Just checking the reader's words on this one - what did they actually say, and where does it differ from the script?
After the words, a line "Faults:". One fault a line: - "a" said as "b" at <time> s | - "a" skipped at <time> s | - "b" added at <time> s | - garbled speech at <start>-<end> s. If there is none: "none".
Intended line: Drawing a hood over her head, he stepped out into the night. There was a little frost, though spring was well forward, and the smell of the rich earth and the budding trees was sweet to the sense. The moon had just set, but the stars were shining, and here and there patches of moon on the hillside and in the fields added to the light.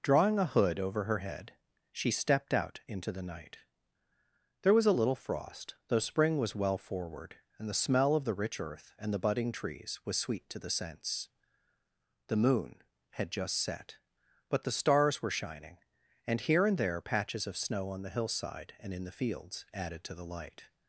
Drawing a hood over her head, she stepped out into the night. There was a little frost, though spring was well forward, and the smell of the rich earth and the budding trees was sweet to the sense. The moon had just set, but the stars were shining, and here and there patches of snow on the hillside and in the fields added to the light.
Faults:
- "he" said as "she" at 1.9 s
- "moon" said as "snow" at 17.6 s